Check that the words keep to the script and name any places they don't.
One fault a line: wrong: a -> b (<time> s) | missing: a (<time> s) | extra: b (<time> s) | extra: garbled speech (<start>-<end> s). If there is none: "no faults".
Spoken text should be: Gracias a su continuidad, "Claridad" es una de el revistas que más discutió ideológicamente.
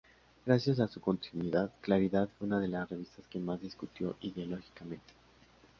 wrong: es -> fue (2.3 s)
wrong: el -> las (2.7 s)